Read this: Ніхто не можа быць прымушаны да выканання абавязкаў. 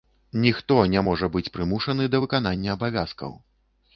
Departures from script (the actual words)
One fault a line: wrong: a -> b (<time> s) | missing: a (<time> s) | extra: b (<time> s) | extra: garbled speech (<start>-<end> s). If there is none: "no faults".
no faults